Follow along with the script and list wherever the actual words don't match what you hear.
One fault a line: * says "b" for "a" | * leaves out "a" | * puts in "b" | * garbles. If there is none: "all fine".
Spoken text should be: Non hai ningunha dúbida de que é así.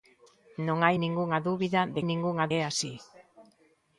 * says "ningunha" for "que"